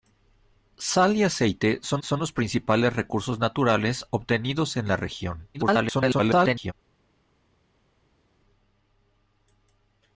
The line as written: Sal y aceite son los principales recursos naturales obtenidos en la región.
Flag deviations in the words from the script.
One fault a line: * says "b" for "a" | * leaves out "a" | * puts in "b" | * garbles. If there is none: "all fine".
* puts in "son"
* garbles